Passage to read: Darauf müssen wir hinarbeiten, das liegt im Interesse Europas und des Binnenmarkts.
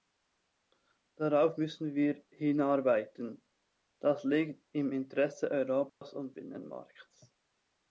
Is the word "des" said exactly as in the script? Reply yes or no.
no